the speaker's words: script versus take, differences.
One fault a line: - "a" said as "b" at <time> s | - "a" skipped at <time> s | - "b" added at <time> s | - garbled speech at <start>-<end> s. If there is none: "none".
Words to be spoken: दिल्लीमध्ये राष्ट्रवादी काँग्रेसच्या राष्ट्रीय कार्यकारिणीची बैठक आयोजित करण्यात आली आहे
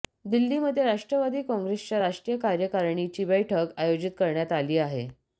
none